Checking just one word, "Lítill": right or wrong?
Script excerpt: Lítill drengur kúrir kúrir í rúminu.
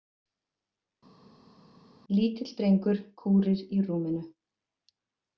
right